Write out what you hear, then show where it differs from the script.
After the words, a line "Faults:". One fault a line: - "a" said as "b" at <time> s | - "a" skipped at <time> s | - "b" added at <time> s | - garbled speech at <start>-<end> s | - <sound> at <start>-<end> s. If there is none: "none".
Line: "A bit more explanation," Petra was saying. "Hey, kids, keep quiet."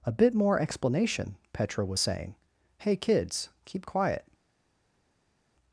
"A bit more explanation," Petra was saying. "Hey, kids, keep quiet."
Faults:
none